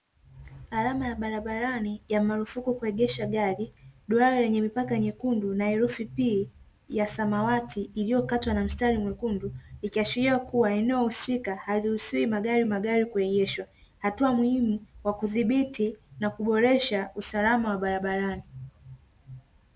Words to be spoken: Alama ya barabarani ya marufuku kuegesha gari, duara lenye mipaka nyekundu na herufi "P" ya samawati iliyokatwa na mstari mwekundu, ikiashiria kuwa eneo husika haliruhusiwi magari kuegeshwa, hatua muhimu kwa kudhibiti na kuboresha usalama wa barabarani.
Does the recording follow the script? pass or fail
fail